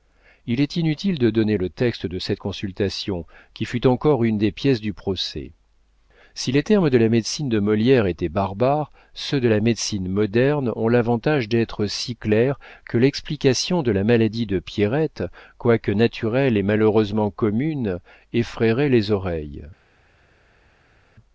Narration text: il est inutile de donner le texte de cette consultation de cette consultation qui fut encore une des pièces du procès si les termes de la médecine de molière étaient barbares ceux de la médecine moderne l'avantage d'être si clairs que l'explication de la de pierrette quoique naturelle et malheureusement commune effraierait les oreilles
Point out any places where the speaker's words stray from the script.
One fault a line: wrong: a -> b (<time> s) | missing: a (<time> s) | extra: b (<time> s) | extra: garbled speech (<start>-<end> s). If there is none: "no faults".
missing: de cette consultation (3.3 s)
extra: ont (10.8 s)
extra: maladie (14.1 s)